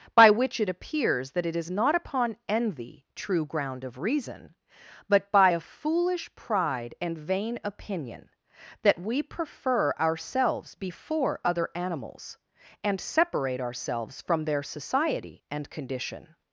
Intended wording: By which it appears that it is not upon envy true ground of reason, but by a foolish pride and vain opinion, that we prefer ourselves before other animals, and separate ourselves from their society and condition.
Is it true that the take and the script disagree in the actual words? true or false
false